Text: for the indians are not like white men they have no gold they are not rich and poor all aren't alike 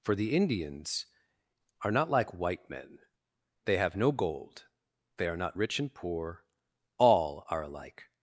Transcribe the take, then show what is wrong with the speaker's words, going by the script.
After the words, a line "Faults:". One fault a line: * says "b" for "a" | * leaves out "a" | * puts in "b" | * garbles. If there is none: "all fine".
for the indians are not like white men they have no gold they are not rich and poor all are alike
Faults:
* says "are" for "aren't"